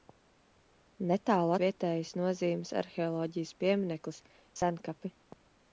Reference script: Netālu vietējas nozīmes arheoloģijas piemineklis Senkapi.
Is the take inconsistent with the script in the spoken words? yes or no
no